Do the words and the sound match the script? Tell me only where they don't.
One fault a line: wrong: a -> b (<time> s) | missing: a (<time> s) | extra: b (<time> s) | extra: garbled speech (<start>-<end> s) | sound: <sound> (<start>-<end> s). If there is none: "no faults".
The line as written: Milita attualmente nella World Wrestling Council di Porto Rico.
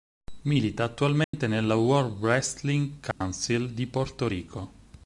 sound: dropout (1.2-1.3 s)
sound: dropout (3.1-3.2 s)